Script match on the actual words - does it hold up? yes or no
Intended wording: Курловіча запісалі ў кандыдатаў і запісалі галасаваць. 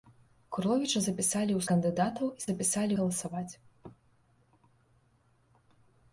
yes